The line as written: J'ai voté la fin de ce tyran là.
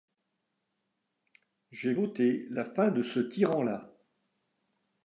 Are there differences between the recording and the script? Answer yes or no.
no